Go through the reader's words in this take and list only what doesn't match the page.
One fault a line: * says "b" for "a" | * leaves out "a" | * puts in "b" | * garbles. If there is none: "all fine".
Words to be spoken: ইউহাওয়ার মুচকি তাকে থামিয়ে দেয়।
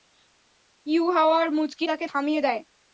all fine